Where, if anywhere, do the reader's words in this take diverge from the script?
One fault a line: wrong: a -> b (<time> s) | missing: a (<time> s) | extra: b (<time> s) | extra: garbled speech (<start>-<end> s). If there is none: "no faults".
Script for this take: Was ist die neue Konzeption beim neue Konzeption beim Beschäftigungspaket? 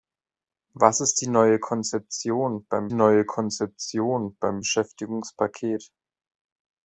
no faults